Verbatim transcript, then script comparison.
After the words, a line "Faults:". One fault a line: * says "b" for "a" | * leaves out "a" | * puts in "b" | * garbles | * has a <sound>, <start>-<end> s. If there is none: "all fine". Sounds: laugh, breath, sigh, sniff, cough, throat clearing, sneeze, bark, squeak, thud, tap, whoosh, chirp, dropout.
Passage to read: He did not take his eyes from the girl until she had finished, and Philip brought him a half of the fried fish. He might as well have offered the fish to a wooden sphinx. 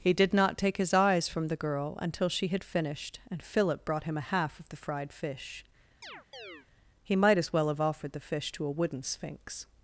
He did not take his eyes from the girl until she had finished, and Philip brought him a half of the fried fish. He might as well have offered the fish to a wooden sphinx.
Faults:
* has a chirp, 6.0-6.7 s